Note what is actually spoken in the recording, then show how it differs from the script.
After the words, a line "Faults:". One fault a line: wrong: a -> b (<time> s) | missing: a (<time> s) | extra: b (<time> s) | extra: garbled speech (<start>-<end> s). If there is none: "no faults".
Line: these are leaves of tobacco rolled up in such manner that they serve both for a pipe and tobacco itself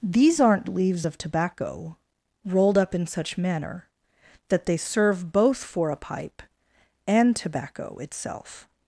these aren't leaves of tobacco rolled up in such manner that they serve both for a pipe and tobacco itself
Faults:
wrong: are -> aren't (0.4 s)